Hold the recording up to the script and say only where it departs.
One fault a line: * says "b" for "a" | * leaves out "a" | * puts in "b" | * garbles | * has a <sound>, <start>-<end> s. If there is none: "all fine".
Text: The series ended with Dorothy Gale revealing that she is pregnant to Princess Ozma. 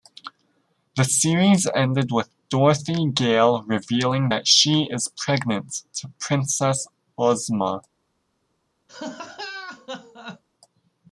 * has a laugh, 8.9-10.4 s